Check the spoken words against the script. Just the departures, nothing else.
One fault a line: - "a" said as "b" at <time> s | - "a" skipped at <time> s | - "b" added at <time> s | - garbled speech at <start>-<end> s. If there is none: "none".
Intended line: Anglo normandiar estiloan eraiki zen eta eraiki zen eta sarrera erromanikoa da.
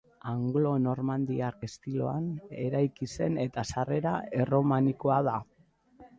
- "eraiki zen eta" skipped at 3.7 s